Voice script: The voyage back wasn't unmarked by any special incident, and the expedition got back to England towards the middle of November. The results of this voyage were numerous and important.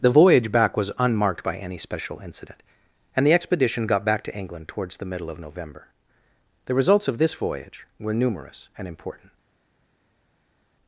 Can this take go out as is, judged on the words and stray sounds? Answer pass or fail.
fail